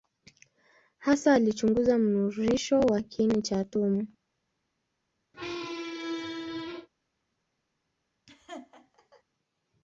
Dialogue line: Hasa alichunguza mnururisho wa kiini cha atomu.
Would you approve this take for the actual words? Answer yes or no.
yes